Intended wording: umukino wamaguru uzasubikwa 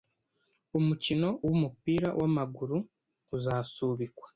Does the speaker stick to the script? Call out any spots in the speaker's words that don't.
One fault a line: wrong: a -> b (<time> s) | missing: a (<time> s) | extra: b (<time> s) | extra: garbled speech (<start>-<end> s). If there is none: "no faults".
extra: wumupira (1.5 s)